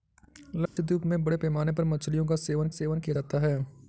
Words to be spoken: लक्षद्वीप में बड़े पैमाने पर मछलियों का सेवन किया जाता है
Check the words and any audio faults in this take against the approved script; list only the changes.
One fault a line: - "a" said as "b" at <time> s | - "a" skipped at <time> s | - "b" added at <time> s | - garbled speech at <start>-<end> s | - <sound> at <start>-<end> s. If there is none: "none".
- dropout at 0.7-0.8 s
- "सेवन" added at 2.7 s